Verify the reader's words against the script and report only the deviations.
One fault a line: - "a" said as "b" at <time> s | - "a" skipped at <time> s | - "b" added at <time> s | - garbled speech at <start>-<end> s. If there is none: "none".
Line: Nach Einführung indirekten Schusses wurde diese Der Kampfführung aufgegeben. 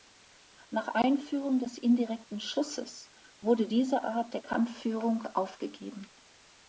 - "des" added at 1.6 s
- "Art" added at 4.0 s